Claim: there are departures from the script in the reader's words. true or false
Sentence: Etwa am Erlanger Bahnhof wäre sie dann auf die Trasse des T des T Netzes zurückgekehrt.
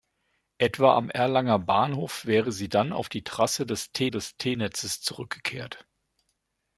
false